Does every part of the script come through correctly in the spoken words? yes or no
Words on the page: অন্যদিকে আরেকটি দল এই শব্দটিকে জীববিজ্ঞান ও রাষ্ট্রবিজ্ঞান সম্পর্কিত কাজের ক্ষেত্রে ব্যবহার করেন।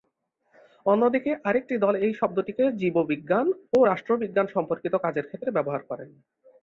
yes